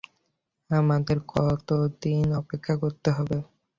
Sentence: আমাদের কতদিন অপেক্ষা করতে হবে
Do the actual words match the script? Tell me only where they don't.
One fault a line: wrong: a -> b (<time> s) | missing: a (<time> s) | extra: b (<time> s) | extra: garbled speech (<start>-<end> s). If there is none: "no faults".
no faults